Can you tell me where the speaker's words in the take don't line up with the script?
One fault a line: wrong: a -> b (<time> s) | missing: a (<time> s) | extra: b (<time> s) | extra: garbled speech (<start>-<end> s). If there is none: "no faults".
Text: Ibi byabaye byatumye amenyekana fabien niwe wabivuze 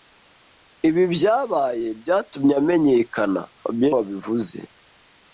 missing: niwe (3.9 s)